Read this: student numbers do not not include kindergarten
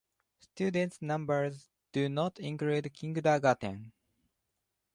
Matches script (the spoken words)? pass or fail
fail